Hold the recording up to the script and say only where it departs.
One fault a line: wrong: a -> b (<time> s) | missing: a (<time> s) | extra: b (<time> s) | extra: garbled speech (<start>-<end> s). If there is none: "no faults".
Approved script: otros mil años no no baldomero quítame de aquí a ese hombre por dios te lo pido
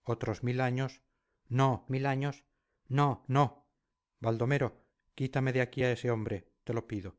extra: mil años (1.9 s)
extra: no (3.3 s)
missing: por dios (6.5 s)